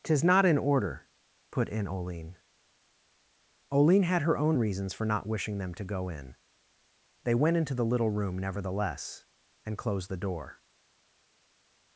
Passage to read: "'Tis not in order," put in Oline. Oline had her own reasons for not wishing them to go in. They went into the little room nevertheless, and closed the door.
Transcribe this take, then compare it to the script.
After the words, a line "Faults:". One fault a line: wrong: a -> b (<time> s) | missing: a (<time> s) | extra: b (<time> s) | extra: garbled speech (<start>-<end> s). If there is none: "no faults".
"'Tis not in order," put in Oline. Oline had her own reasons for not wishing them to go in. They went into the little room nevertheless, and closed the door.
Faults:
no faults